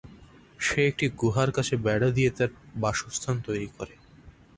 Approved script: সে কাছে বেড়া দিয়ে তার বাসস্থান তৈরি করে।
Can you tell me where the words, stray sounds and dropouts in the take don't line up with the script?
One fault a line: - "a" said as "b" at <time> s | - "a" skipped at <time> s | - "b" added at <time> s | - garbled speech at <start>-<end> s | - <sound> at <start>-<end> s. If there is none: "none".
- "একটি গুহার" added at 0.9 s